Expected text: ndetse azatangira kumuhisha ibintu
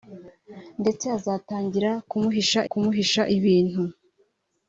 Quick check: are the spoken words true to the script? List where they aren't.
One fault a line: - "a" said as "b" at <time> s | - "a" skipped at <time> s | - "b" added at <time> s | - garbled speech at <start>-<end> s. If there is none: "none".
- "kumuhisha" added at 2.7 s